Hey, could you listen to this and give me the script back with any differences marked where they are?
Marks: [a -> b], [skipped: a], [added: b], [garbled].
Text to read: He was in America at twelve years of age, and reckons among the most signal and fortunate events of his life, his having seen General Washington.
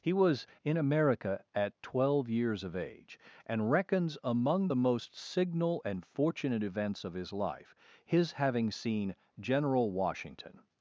He was in America at twelve years of age, and reckons among the most signal and fortunate events of his life, his having seen General Washington.